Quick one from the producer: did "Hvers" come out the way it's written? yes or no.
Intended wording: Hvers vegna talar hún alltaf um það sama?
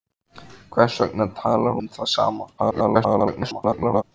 yes